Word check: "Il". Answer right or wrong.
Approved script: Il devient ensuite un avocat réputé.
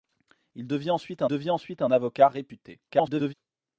right